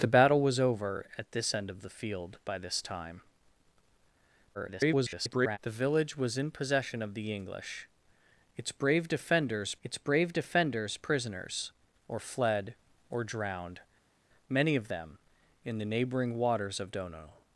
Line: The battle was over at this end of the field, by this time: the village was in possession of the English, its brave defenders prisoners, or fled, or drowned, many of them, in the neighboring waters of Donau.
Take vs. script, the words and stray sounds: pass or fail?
fail